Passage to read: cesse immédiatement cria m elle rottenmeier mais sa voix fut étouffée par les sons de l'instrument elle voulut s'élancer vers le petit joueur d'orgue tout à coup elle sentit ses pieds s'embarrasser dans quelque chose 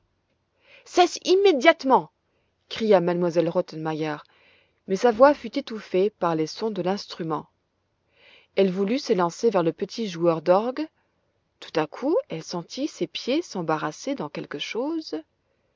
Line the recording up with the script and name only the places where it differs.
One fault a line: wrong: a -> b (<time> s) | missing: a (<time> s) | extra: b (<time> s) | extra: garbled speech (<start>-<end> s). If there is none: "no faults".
no faults